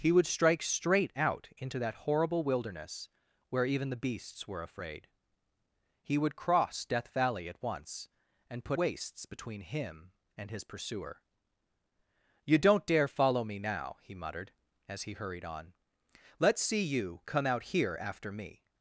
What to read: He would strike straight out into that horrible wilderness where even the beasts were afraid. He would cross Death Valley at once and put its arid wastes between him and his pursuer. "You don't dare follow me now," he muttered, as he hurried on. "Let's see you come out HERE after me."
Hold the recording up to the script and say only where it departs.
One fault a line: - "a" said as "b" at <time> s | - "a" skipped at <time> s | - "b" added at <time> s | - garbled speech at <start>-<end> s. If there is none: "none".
- "its arid" skipped at 8.8 s